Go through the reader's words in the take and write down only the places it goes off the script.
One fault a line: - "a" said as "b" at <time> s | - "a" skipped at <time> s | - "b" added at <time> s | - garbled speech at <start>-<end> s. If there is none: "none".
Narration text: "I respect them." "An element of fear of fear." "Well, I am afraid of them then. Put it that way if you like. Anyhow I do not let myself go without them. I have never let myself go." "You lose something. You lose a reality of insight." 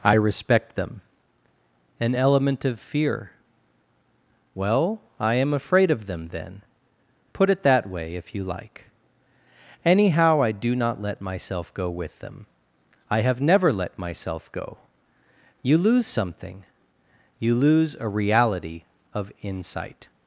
- "of fear" skipped at 3.3 s
- "without" said as "with" at 11.9 s